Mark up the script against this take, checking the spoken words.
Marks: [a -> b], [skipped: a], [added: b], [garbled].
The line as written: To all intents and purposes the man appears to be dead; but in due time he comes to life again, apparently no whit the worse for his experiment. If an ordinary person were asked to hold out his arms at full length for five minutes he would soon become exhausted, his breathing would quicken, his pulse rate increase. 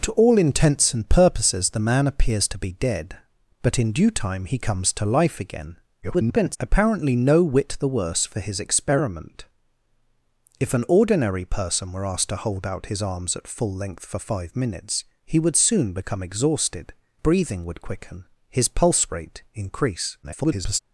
To all intents and purposes the man appears to be dead; but in due time he comes to life again, [garbled] apparently no whit the worse for his experiment. If an ordinary person were asked to hold out his arms at full length for five minutes he would soon become exhausted, [skipped: his] breathing would quicken, his pulse rate increase. [garbled]